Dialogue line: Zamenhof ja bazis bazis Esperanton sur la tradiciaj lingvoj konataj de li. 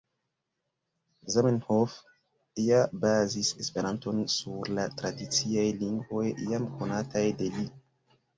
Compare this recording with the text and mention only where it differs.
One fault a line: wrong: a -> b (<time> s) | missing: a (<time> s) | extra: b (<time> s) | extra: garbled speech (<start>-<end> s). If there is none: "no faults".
missing: bazis (3.5 s)
extra: jam (6.5 s)